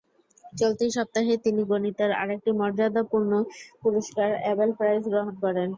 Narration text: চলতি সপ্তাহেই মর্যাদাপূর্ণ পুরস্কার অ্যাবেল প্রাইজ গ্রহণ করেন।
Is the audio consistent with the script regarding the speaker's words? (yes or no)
no